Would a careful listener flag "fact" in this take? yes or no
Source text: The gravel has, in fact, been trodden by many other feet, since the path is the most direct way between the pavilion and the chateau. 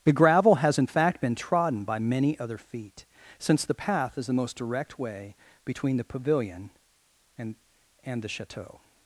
no